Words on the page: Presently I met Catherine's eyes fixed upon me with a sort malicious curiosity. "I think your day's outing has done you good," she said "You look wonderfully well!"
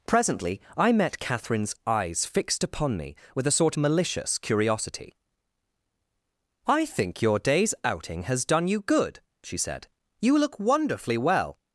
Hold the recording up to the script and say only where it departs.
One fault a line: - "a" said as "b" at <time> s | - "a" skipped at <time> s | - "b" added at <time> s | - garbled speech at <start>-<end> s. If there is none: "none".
none